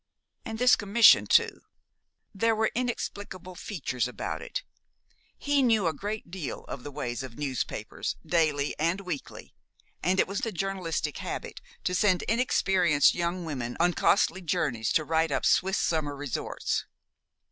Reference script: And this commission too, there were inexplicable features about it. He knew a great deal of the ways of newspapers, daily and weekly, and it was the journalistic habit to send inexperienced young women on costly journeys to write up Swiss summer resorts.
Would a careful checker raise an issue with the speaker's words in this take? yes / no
no